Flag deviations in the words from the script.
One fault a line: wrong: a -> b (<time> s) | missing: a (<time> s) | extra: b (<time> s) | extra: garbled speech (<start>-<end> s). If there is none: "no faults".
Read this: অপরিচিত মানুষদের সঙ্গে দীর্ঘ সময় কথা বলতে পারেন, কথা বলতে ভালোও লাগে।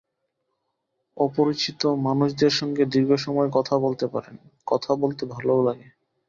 no faults